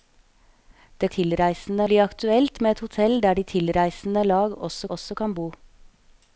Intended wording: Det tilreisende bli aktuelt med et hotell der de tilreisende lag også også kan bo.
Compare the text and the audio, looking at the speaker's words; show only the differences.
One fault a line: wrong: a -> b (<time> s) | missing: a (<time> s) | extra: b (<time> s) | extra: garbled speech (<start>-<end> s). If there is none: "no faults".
no faults